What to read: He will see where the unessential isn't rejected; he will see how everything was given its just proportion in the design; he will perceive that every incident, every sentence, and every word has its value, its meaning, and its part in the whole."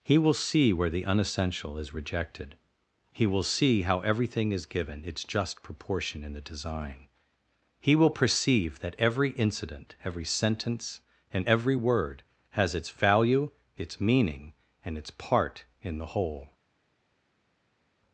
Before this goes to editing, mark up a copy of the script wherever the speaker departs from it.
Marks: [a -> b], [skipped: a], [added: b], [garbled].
He will see where the unessential [isn't -> is] rejected; he will see how everything [was -> is] given its just proportion in the design; he will perceive that every incident, every sentence, and every word has its value, its meaning, and its part in the whole."